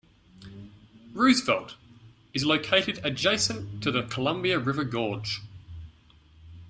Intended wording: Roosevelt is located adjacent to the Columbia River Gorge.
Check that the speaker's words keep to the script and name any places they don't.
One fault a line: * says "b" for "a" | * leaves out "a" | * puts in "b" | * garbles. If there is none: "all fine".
all fine